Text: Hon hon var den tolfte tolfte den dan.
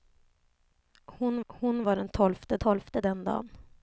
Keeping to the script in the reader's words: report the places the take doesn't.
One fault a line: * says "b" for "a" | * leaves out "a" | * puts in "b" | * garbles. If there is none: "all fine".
all fine